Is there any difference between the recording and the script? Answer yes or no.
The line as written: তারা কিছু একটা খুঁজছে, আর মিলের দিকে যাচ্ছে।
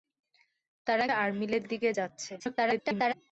yes